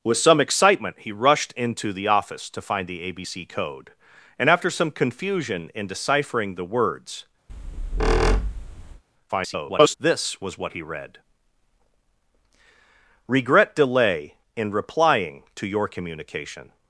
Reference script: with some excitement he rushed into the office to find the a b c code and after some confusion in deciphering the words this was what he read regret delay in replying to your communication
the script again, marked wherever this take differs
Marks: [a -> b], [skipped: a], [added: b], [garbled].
with some excitement he rushed into the office to find the a b c code and after some confusion in deciphering the words [garbled] this was what he read regret delay in replying to your communication